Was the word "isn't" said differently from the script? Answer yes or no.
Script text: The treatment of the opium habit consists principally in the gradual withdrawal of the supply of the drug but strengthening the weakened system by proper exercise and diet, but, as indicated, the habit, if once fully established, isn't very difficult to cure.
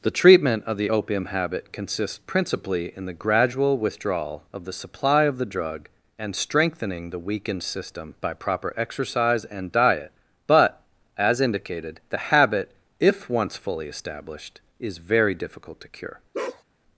yes